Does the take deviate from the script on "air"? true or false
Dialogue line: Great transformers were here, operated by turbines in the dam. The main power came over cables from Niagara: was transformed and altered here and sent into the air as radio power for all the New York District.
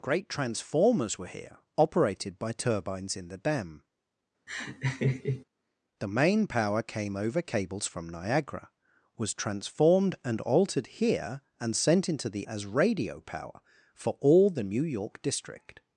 true